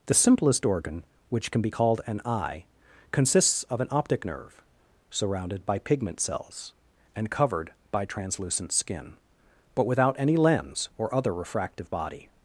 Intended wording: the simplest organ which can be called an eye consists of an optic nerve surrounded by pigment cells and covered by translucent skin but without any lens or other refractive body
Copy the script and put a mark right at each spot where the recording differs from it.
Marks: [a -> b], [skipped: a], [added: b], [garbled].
the simplest organ which can be called an eye consists of an optic nerve surrounded by pigment cells and covered by translucent skin but without any lens or other refractive body